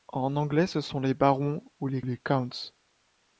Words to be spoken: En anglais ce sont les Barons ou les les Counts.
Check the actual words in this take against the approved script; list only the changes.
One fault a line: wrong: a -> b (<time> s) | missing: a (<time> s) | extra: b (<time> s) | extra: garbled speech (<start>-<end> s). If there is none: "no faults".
no faults